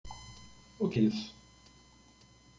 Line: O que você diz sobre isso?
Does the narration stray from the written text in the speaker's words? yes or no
yes